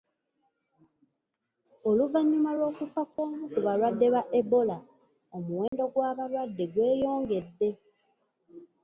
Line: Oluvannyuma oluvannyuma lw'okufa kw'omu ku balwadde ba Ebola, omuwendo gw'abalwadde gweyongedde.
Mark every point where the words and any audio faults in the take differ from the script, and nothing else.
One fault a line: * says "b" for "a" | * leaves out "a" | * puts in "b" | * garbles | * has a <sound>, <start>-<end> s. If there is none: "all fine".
* leaves out "oluvannyuma"
* has a dropout, 3.1-3.2 s
* has a dropout, 5.7-5.7 s